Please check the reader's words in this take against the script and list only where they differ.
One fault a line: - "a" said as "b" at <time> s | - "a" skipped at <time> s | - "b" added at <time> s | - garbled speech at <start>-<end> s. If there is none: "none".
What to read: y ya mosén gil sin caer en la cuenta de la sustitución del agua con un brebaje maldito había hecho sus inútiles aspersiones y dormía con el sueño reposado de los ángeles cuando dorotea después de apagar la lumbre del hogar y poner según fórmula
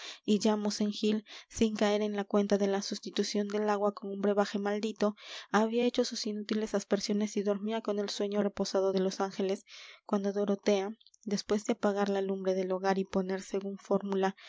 none